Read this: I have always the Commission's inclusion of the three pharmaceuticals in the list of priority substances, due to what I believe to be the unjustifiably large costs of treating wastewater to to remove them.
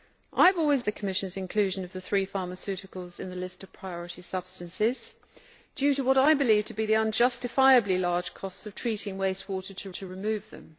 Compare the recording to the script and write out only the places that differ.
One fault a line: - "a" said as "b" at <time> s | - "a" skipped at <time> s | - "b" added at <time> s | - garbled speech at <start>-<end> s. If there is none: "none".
none